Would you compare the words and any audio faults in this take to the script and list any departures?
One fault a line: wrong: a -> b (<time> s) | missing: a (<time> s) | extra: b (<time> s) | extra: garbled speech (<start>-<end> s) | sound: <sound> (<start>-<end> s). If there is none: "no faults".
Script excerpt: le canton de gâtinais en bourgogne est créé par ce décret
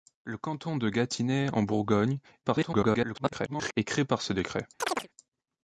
extra: garbled speech (2.4-3.7 s)
sound: chirp (4.8-5.1 s)